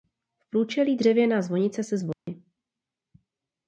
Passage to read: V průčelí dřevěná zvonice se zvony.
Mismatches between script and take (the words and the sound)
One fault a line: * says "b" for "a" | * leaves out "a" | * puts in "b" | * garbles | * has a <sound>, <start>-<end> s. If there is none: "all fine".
* has a dropout, 2.1-2.3 s